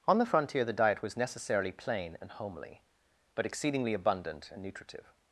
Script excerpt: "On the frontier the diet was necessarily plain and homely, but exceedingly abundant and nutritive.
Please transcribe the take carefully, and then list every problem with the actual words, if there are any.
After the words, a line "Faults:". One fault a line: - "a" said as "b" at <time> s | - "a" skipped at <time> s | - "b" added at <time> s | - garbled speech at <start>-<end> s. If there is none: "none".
"On the frontier the diet was necessarily plain and homely, but exceedingly abundant and nutritive.
Faults:
none